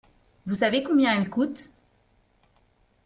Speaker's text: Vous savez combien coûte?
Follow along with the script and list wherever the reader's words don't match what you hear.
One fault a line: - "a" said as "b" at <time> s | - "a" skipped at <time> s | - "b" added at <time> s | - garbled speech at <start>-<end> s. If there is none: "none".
- "elle" added at 1.2 s